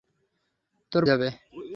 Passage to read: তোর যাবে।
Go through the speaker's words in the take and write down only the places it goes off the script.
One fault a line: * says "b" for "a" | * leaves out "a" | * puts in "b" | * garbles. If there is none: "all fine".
all fine